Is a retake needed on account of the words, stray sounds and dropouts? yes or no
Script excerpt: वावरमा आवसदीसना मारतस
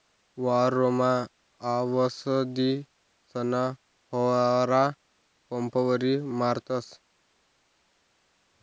yes